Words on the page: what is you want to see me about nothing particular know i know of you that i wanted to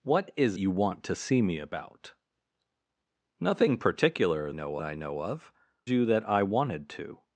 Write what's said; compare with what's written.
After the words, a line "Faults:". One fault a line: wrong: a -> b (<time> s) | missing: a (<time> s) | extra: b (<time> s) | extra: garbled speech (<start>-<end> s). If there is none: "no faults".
what is you want to see me about nothing particular know i know of you that i wanted to
Faults:
no faults